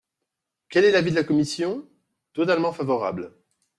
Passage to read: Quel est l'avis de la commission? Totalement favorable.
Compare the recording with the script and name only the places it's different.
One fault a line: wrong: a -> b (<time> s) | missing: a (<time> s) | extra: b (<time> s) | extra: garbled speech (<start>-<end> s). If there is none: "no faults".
no faults